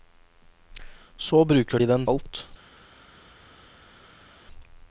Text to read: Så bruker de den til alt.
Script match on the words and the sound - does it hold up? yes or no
no